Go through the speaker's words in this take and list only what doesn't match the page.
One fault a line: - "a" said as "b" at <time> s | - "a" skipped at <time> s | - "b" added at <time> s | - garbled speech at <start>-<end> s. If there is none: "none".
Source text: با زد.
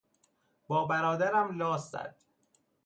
- "برادرم لاس" added at 0.8 s